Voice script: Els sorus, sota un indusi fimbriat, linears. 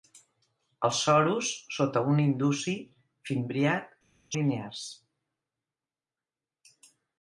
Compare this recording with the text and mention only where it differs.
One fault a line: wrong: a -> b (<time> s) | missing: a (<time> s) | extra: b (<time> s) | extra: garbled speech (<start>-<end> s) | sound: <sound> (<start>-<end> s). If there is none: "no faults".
no faults